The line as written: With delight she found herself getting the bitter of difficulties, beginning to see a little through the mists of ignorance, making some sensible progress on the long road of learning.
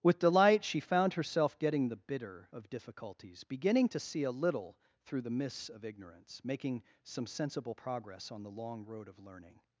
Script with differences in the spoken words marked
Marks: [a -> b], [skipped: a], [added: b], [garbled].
With delight she found herself getting the bitter of difficulties, beginning to see a little through the mists of ignorance, making some sensible progress on the long road of learning.